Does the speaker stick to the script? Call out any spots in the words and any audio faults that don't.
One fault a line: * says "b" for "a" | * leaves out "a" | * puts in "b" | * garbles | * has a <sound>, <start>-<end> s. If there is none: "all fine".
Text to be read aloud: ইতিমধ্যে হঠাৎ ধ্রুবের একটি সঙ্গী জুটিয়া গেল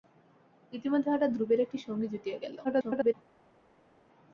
* garbles